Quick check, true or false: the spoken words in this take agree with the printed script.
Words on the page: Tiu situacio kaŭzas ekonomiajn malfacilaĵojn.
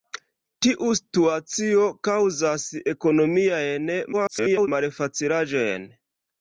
false